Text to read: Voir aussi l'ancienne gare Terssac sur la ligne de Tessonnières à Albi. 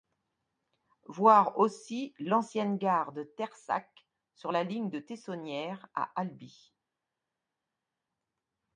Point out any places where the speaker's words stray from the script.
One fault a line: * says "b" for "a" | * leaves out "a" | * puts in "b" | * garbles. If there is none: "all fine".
* puts in "de"